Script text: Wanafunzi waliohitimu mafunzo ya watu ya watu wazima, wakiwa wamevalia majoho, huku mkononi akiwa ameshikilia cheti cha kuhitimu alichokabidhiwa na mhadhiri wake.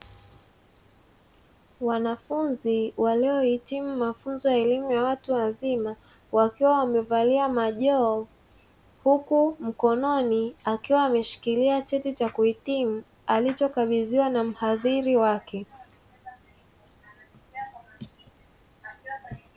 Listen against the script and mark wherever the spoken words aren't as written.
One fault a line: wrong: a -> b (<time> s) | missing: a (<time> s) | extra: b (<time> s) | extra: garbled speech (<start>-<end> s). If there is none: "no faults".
wrong: watu -> elimu (4.6 s)